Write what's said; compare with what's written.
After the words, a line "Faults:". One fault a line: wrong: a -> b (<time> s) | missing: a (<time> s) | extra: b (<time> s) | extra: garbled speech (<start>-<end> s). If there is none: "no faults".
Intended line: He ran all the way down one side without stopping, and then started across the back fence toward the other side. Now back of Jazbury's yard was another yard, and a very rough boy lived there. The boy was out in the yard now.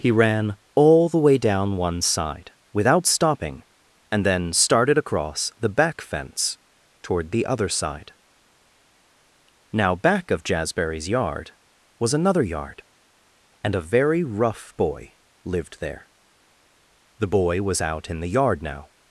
He ran all the way down one side without stopping, and then started across the back fence toward the other side. Now back of Jazbury's yard was another yard, and a very rough boy lived there. The boy was out in the yard now.
Faults:
no faults